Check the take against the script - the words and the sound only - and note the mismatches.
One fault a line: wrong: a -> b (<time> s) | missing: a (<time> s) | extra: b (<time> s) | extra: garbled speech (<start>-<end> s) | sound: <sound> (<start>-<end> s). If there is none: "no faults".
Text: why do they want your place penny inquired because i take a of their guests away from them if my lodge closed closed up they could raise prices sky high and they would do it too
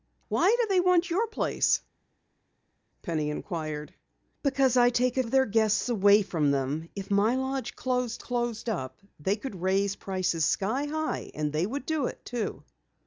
no faults